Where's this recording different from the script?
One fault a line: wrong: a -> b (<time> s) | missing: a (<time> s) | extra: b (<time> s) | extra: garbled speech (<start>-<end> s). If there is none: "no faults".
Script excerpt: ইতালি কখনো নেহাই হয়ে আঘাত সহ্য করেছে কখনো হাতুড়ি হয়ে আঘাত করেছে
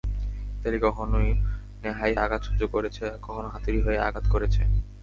missing: হয়ে (2.1 s)